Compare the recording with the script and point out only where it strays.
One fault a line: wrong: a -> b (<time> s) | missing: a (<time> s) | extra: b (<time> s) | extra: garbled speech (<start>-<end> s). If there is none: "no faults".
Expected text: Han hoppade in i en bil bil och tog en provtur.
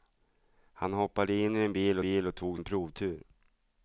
no faults